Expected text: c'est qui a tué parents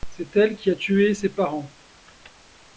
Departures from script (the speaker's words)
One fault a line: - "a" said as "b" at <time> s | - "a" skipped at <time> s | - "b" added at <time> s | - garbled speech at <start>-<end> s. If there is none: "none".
- "elle" added at 0.3 s
- "ses" added at 1.1 s